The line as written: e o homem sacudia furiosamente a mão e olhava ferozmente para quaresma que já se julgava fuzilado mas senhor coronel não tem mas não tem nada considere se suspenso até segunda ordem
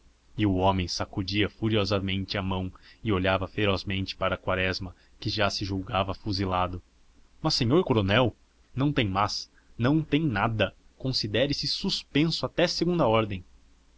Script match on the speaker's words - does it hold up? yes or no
yes